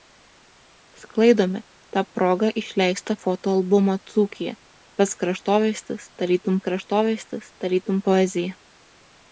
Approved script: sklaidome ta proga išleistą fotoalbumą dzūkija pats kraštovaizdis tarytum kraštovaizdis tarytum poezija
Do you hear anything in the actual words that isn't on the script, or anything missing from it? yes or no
no